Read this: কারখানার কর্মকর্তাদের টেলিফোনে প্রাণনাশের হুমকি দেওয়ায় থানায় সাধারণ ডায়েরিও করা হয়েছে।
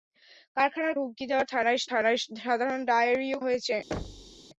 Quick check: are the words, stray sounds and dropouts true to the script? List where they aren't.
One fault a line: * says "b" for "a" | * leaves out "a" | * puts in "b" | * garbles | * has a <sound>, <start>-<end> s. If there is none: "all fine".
* leaves out "কর্মকর্তাদের টেলিফোনে প্রাণনাশের"
* puts in "থানায়"
* leaves out "করা"
* has a thud, 3.9-4.4 s